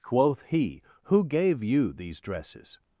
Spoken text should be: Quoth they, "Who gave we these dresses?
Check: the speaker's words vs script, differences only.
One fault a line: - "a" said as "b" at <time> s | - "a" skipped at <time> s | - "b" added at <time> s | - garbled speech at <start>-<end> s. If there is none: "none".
- "they" said as "he" at 0.4 s
- "we" said as "you" at 1.6 s